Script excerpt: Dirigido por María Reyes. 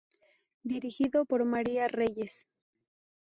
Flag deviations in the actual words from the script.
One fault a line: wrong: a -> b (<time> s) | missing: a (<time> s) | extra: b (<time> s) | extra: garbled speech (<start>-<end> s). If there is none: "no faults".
no faults